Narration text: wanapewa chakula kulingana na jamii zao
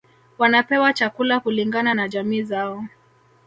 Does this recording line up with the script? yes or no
yes